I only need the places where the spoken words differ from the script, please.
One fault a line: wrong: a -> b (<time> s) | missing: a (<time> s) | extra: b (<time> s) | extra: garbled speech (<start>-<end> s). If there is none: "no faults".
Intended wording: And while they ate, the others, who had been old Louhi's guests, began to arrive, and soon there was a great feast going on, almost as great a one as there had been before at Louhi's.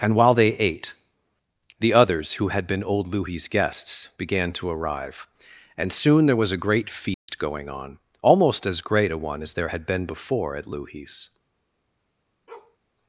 no faults